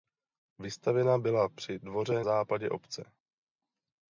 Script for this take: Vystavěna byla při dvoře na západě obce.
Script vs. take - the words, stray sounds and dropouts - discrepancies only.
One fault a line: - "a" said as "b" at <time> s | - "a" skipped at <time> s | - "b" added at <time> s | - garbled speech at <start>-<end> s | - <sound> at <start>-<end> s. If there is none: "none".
- "na" skipped at 2.2 s